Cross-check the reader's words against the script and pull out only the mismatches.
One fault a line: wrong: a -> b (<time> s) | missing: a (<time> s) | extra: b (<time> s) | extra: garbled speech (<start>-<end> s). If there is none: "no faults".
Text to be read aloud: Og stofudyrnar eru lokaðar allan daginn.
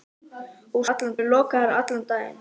wrong: stofudyrnar -> allan (0.9 s)